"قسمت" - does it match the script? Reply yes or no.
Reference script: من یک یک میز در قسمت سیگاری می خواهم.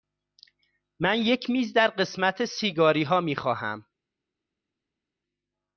yes